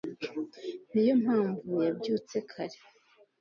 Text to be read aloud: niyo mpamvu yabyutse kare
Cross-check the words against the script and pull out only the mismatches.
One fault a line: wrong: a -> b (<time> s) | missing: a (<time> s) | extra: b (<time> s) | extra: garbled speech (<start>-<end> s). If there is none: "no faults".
no faults